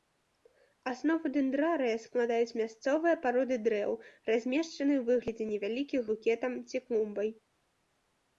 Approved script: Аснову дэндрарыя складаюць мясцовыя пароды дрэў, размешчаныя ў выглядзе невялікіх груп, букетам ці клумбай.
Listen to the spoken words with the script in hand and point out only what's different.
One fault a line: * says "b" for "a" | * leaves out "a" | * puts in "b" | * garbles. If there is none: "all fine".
* leaves out "груп"